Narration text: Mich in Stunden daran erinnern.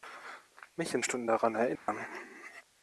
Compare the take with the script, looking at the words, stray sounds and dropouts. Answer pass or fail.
fail